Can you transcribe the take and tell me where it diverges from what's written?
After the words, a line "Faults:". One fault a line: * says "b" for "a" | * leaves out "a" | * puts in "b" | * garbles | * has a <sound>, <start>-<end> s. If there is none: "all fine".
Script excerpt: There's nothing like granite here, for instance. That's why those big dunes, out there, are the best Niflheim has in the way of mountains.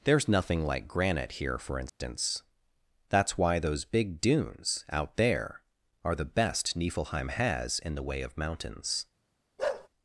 There's nothing like granite here, for instance. That's why those big dunes, out there, are the best Niflheim has in the way of mountains.
Faults:
* has a dropout, 1.9-2.0 s
* has a bark, 9.6-9.9 s